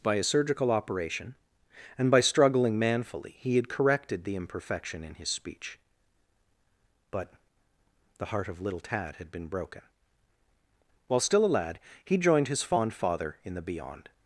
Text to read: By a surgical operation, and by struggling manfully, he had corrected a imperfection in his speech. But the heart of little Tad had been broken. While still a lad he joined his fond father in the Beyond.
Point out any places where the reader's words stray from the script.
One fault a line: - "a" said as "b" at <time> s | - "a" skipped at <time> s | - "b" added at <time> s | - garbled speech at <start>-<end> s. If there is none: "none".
- "a" said as "the" at 4.2 s